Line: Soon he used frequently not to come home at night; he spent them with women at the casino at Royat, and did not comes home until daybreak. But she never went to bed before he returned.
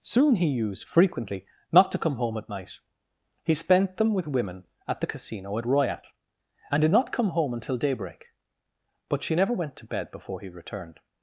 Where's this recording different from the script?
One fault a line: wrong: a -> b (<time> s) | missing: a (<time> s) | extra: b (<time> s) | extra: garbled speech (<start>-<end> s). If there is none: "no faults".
wrong: comes -> come (7.1 s)